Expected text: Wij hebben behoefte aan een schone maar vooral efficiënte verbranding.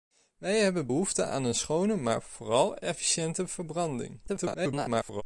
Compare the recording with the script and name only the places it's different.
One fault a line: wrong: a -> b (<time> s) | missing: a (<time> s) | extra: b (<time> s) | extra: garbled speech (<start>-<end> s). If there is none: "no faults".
extra: garbled speech (4.3-5.2 s)